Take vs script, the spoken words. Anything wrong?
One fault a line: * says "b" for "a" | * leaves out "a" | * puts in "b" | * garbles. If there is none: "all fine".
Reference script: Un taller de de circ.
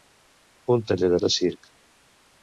all fine